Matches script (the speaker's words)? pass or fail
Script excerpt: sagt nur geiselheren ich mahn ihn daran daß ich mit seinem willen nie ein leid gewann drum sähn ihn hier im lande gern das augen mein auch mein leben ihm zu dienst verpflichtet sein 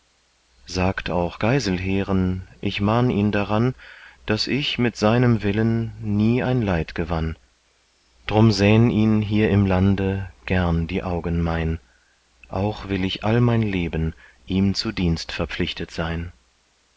fail